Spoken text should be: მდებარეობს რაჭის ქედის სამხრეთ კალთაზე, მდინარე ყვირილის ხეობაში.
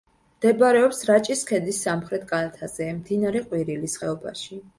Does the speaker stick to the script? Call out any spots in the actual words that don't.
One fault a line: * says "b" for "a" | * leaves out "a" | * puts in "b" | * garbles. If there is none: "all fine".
all fine